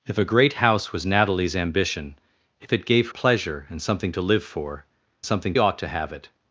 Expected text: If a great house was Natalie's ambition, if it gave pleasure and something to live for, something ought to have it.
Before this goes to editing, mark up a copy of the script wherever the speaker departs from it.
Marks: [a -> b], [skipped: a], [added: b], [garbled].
If a great house was Natalie's ambition, if it gave pleasure and something to live for, something ought to have it.